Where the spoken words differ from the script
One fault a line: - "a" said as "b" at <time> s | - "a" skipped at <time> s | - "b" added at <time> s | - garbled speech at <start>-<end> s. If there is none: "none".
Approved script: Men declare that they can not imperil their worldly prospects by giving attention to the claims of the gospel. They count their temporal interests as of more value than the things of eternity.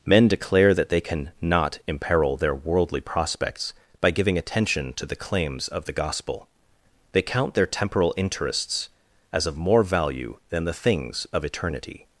none